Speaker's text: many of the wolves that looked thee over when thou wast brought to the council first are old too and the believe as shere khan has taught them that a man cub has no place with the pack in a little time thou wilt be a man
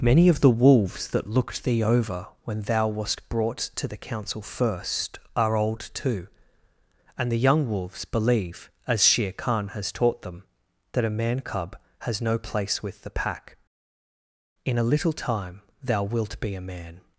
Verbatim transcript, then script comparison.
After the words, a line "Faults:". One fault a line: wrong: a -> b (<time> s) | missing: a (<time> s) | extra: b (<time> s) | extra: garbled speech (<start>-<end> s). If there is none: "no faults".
many of the wolves that looked thee over when thou wast brought to the council first are old too and the young wolves believe as shere khan has taught them that a man cub has no place with the pack in a little time thou wilt be a man
Faults:
extra: young wolves (7.4 s)